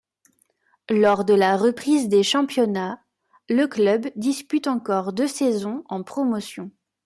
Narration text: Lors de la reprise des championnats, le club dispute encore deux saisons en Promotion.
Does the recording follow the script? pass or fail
pass